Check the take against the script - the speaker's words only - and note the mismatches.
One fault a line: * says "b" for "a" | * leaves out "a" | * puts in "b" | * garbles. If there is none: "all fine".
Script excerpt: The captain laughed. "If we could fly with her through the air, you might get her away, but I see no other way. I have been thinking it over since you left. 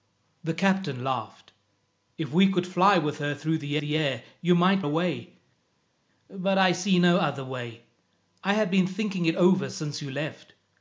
* puts in "the"
* leaves out "get her"